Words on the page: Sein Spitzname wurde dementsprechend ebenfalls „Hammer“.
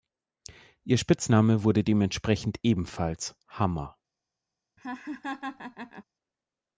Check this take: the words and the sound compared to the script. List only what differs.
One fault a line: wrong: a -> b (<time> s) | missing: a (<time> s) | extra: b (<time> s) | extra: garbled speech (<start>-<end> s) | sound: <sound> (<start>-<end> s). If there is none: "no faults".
wrong: Sein -> Ihr (0.8 s)
sound: laugh (4.8-6.0 s)